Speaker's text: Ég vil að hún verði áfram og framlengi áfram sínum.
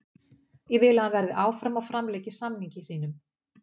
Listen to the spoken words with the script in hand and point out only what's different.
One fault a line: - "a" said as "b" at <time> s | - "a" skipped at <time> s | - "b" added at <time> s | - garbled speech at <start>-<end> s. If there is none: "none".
- "hún" said as "hann" at 1.0 s
- "áfram" said as "samningi" at 2.4 s